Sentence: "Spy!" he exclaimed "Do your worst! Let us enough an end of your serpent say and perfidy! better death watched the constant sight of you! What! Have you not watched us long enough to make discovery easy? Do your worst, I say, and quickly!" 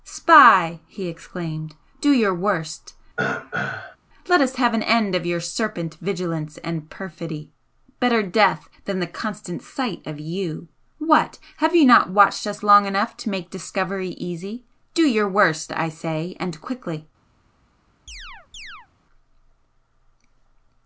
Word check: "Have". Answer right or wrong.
right